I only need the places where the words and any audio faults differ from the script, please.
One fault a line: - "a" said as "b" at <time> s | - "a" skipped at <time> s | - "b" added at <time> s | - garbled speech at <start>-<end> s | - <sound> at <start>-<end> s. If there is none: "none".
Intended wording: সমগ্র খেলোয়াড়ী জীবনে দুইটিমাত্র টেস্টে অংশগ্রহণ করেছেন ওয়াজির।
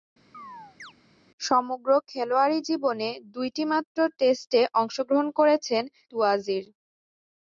- chirp at 0.3-0.9 s